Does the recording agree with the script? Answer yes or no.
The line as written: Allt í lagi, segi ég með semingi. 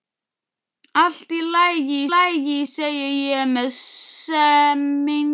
no